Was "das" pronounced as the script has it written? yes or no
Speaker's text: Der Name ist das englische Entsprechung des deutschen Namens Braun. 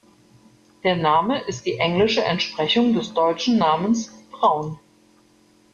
no